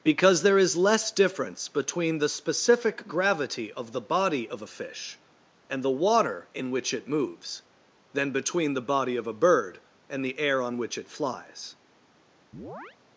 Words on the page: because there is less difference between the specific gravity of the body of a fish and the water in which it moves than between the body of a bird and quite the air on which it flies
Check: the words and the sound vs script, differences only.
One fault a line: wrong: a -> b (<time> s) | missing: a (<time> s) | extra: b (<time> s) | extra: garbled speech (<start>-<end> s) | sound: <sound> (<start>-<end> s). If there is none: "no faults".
missing: quite (10.2 s)
sound: chirp (12.5-13.0 s)